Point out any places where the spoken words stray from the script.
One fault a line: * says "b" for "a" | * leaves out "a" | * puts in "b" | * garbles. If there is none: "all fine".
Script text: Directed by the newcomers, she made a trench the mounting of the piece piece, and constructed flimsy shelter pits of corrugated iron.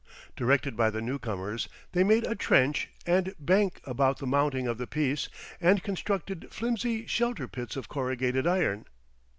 * says "they" for "she"
* puts in "and bank about"
* leaves out "piece"